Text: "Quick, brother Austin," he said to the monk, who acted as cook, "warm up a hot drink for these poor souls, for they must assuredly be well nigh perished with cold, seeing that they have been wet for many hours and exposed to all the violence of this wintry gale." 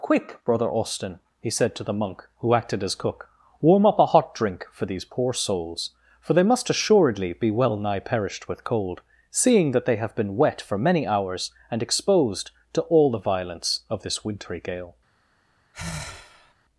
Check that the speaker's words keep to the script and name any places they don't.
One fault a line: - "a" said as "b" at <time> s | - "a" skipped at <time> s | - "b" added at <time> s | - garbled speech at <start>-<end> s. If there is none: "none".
none